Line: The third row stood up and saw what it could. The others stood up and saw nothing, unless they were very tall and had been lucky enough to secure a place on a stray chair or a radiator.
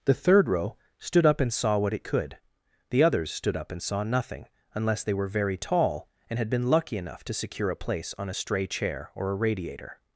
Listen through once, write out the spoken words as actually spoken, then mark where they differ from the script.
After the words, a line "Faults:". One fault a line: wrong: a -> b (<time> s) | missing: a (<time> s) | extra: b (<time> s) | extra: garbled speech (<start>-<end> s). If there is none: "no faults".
The third row stood up and saw what it could. The others stood up and saw nothing, unless they were very tall and had been lucky enough to secure a place on a stray chair or a radiator.
Faults:
no faults